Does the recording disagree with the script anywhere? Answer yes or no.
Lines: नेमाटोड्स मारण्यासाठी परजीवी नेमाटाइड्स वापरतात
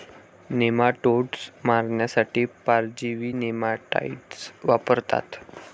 no